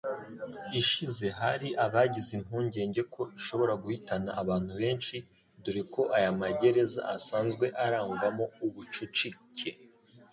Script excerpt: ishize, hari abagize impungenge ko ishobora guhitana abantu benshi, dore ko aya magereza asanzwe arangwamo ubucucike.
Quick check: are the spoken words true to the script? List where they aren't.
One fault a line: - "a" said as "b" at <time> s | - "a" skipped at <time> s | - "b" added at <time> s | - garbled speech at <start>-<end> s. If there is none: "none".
none